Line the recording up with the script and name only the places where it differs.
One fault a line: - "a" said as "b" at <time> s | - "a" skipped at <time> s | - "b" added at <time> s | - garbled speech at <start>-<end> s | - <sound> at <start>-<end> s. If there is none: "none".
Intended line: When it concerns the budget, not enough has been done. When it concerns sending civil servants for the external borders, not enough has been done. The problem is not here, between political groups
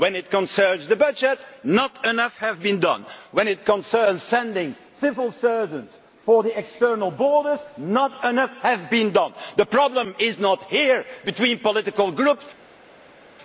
none